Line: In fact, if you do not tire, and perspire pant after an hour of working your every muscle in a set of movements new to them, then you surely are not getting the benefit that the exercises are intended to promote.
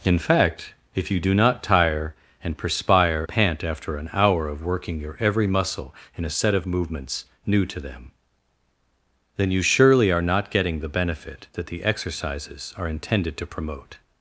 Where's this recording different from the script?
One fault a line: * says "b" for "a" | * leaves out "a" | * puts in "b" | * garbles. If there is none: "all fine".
all fine